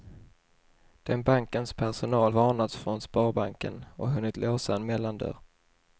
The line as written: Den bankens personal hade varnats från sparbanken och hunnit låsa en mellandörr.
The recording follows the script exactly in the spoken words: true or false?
false